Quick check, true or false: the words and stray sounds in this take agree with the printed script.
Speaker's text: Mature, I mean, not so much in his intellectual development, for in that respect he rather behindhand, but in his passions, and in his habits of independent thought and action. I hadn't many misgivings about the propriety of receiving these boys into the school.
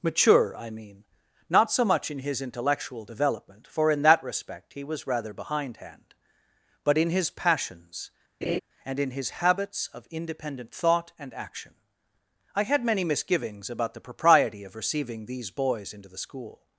false